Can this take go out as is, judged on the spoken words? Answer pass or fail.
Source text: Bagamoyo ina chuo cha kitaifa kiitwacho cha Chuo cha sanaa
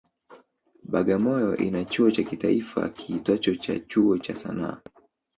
pass